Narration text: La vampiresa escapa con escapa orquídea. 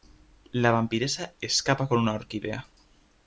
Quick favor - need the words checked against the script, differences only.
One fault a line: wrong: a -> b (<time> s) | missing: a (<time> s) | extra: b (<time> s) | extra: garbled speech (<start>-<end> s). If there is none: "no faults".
wrong: escapa -> una (2.0 s)